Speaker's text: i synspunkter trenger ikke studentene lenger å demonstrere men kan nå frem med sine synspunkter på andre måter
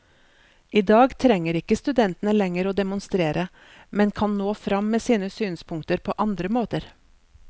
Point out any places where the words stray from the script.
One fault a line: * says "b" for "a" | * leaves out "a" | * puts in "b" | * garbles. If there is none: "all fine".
* says "dag" for "synspunkter"